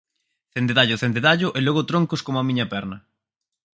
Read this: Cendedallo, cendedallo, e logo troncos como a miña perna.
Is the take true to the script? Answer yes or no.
yes